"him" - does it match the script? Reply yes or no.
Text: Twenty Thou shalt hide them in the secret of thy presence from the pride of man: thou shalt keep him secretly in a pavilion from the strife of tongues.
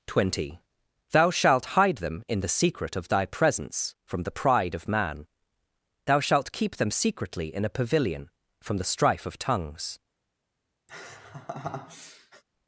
no